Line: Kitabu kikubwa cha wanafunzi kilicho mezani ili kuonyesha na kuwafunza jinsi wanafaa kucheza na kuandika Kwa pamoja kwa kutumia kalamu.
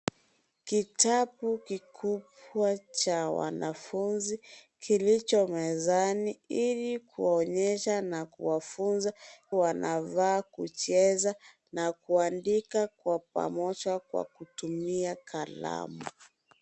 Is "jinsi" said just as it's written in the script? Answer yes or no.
no